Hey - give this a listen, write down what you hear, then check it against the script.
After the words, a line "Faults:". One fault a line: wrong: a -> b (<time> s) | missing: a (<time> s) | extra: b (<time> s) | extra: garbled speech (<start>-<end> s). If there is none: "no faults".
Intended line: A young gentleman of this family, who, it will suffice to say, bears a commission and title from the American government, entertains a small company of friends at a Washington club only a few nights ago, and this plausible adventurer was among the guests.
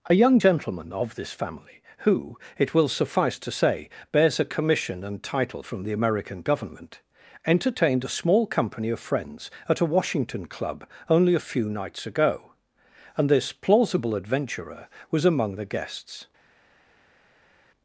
A young gentleman of this family, who, it will suffice to say, bears a commission and title from the American government, entertained a small company of friends at a Washington club only a few nights ago, and this plausible adventurer was among the guests.
Faults:
wrong: entertains -> entertained (7.4 s)